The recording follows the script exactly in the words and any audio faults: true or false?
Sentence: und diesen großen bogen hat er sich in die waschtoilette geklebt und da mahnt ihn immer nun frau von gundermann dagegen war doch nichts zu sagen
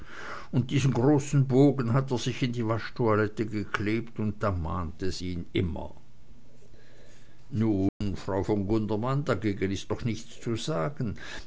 false